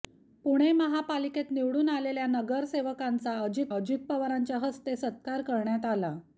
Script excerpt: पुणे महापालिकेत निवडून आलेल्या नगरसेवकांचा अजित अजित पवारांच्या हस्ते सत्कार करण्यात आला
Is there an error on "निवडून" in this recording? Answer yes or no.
no